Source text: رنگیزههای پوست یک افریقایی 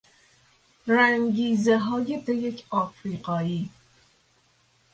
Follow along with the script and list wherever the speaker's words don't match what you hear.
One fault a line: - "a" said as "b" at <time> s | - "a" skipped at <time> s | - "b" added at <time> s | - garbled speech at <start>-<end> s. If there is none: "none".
- "پوست" skipped at 2.2 s